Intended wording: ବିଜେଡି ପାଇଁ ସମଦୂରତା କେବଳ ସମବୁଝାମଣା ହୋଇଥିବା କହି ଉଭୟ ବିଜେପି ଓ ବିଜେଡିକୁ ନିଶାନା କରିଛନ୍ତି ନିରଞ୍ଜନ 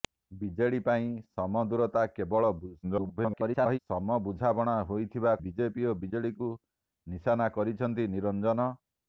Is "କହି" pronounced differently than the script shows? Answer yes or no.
yes